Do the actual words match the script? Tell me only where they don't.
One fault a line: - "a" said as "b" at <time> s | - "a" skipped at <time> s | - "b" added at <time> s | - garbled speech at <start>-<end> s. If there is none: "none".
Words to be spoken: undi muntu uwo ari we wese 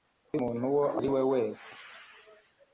none